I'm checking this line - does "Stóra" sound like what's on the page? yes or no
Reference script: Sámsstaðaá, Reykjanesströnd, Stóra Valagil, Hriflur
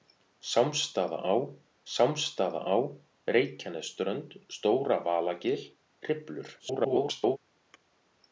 yes